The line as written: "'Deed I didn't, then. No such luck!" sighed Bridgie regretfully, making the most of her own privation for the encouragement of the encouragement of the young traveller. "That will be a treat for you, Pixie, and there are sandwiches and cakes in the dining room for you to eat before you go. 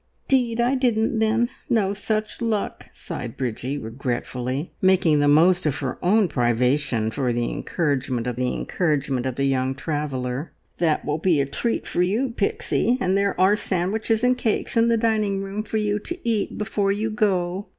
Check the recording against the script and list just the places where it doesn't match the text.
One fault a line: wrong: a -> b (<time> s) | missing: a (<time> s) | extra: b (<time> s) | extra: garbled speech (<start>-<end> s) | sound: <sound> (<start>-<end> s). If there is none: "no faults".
no faults